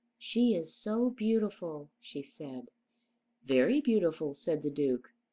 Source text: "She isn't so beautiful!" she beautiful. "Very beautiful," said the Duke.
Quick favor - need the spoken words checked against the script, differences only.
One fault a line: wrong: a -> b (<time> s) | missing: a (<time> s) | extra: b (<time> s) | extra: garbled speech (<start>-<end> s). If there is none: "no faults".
wrong: isn't -> is (0.6 s)
wrong: beautiful -> said (2.2 s)